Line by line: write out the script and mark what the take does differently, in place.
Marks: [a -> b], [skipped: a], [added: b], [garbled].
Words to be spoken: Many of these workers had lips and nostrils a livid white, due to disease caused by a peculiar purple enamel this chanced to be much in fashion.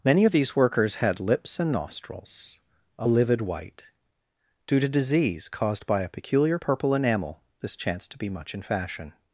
Many of these workers had lips and nostrils a livid white, due to disease caused by a peculiar purple enamel this chanced to be much in fashion.